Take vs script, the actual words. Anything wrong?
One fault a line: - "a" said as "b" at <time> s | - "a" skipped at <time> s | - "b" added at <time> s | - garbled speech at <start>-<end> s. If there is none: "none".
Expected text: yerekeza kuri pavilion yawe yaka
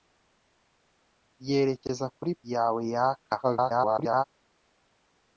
- "pavilion" skipped at 2.3 s
- garbled speech at 3.4-4.2 s